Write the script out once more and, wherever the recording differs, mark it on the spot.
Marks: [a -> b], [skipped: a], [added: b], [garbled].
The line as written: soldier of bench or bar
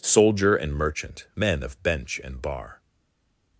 soldier [added: and merchant men] of bench [or -> and] bar